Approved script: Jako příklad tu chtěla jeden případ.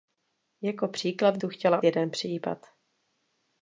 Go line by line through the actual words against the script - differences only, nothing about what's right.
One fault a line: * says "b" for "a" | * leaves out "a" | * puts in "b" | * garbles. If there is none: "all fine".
all fine